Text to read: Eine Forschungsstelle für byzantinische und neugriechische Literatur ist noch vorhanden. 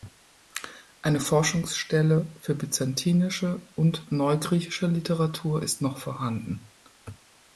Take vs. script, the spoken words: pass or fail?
pass